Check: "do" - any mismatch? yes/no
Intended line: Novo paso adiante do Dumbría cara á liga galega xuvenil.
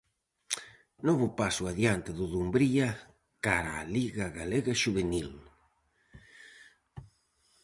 no